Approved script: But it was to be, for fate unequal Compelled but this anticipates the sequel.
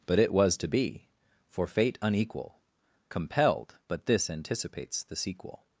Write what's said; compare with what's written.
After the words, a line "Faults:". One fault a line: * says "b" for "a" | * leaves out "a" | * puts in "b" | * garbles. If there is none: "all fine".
But it was to be, for fate unequal Compelled but this anticipates the sequel.
Faults:
all fine